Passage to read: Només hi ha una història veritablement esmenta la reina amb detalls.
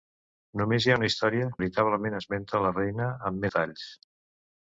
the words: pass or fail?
pass